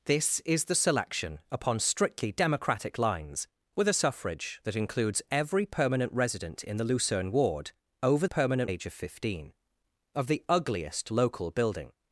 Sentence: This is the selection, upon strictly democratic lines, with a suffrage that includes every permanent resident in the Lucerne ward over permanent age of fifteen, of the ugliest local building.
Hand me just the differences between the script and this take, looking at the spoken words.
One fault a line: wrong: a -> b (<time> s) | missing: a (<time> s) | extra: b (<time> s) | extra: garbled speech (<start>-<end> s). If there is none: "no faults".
no faults